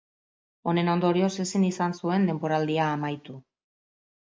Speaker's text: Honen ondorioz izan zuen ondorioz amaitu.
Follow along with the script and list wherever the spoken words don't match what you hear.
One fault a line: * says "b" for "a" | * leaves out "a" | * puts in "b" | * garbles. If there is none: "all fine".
* puts in "ezin"
* says "denboraldia" for "ondorioz"